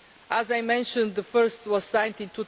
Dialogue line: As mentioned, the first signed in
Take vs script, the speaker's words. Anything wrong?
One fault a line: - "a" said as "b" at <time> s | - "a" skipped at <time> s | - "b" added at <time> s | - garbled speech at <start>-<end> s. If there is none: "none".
- "I" added at 0.5 s
- "was" added at 1.7 s